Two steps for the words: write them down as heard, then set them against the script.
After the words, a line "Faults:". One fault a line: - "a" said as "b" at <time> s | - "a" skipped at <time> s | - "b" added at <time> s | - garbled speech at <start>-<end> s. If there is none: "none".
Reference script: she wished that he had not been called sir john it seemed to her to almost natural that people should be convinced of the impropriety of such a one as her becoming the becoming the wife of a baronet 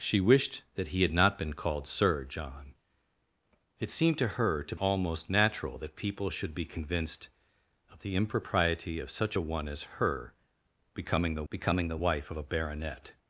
she wished that he had not been called sir john it seemed to her to almost natural that people should be convinced of the impropriety of such a one as her becoming the becoming the wife of a baronet
Faults:
none